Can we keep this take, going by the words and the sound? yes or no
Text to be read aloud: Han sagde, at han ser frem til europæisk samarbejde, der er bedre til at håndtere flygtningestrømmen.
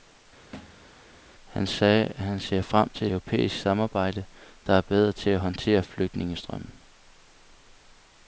no